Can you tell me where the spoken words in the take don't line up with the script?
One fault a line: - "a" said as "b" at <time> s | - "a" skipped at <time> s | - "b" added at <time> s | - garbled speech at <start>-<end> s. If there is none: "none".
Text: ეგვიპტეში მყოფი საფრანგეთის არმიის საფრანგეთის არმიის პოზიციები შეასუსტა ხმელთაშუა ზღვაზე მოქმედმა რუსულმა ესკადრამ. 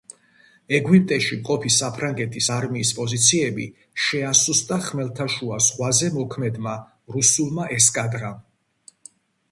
- "საფრანგეთის არმიის" skipped at 2.9 s